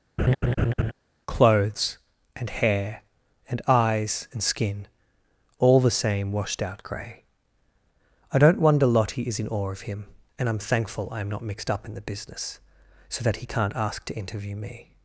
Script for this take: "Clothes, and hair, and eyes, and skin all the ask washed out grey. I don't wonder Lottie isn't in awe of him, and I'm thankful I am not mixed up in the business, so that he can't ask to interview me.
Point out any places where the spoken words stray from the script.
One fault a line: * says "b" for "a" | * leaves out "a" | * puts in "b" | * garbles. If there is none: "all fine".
* says "same" for "ask"
* says "is" for "isn't"